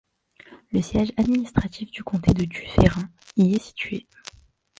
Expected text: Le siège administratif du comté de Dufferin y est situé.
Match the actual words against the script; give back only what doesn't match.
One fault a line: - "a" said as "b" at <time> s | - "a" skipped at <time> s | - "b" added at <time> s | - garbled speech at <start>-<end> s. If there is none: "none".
none